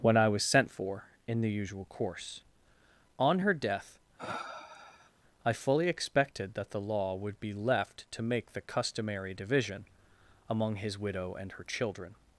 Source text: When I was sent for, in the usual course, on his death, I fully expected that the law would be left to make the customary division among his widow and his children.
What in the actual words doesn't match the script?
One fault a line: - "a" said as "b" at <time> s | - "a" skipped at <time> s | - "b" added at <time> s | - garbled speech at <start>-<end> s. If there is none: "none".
- "his" said as "her" at 3.4 s
- "his" said as "her" at 11.5 s